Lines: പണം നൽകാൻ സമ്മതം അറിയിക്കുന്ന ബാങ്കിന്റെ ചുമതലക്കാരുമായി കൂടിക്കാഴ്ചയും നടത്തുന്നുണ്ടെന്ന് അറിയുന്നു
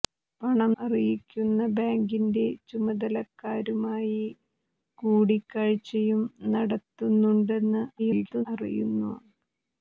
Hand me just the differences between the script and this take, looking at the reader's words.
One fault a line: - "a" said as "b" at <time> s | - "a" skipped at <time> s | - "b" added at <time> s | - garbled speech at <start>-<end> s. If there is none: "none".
- "നൽകാൻ സമ്മതം" skipped at 0.7 s
- garbled speech at 8.0-8.5 s